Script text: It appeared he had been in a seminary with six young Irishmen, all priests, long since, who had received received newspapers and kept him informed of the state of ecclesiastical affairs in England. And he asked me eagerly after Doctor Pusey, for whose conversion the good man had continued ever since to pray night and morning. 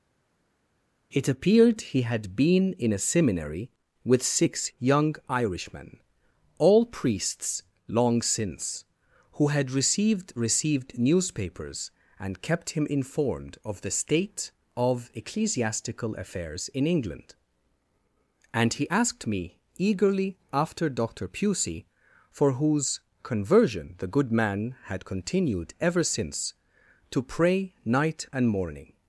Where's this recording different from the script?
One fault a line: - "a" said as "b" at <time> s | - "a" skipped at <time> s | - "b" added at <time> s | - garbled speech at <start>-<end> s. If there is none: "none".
none